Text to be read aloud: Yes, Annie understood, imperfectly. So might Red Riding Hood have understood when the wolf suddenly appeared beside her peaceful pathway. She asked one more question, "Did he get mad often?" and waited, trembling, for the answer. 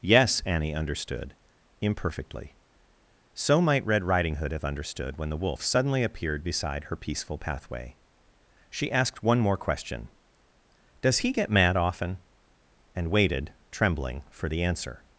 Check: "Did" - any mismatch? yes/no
yes